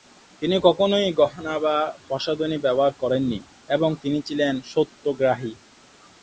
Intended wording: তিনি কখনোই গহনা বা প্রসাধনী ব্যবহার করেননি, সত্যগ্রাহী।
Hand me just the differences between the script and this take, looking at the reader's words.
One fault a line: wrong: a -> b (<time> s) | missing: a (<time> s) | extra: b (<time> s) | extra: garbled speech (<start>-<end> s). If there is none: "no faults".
extra: এবং তিনি ছিলেন (3.7 s)